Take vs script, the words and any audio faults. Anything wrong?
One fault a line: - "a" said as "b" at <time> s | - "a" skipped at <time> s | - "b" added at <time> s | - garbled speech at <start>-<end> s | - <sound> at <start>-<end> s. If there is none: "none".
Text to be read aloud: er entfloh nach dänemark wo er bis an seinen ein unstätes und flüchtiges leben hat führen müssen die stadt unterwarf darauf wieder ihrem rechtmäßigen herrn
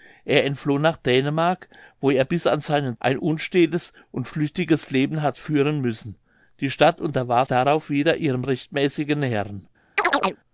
- chirp at 10.0-10.4 s